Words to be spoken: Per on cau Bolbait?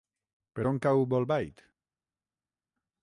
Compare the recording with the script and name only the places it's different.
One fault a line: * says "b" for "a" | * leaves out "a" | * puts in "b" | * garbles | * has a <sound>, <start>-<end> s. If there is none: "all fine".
all fine